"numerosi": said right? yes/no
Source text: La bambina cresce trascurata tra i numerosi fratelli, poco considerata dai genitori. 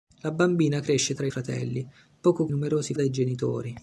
no